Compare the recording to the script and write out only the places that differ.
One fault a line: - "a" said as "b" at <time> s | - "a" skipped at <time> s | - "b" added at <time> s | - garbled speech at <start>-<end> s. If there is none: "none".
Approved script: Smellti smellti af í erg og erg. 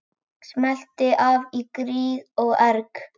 - "smellti" skipped at 1.1 s
- "erg" said as "gríð" at 1.8 s